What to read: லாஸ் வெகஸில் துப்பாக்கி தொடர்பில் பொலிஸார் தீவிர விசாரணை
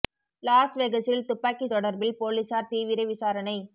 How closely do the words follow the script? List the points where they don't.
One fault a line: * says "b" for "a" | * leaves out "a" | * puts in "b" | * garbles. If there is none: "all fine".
all fine